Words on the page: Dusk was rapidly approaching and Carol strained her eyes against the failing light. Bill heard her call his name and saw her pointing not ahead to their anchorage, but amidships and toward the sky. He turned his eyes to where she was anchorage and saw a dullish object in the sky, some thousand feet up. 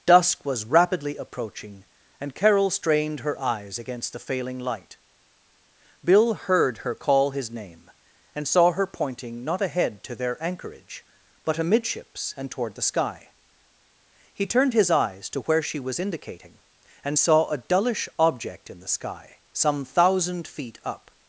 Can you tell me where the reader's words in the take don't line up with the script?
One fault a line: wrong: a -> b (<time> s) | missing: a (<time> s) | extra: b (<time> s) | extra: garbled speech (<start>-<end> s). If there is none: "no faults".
wrong: anchorage -> indicating (16.0 s)